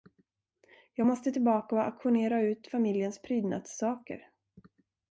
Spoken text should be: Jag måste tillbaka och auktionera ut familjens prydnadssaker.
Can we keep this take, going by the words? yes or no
yes